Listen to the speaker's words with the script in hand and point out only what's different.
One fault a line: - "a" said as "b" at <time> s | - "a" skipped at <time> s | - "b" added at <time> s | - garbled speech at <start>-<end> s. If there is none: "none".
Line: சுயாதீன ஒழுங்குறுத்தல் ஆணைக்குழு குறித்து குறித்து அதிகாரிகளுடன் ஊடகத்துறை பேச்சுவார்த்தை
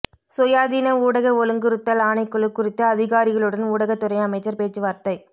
- "ஊடக" added at 1.0 s
- "குறித்து" skipped at 2.8 s
- "அமைச்சர்" added at 4.2 s